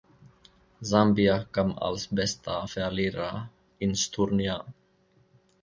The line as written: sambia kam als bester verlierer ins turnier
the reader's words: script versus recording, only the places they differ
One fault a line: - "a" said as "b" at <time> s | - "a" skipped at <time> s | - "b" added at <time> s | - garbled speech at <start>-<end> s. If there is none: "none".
none